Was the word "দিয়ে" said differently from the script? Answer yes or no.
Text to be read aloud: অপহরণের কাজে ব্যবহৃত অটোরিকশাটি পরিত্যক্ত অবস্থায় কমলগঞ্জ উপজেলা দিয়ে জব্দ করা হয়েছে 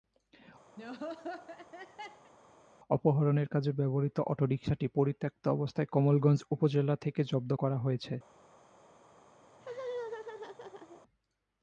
yes